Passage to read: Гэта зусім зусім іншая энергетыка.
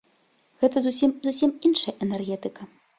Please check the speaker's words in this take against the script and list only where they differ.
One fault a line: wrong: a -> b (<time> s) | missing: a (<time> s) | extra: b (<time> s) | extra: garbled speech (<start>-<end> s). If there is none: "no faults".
no faults